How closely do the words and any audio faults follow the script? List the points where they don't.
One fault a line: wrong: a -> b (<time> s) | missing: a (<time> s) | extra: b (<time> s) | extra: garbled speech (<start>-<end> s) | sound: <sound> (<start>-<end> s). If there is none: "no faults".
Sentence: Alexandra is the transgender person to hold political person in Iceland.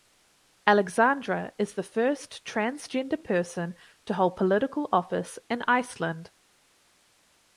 extra: first (1.8 s)
wrong: person -> office (4.9 s)